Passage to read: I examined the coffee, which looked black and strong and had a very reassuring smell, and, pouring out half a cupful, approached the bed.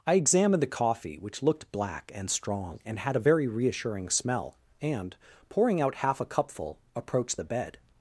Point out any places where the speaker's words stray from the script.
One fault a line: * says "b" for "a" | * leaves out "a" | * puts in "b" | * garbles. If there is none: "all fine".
all fine